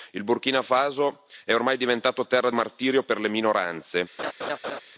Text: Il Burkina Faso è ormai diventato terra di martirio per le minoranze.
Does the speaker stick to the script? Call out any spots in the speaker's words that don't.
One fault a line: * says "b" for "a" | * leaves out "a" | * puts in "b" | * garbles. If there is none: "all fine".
* leaves out "di"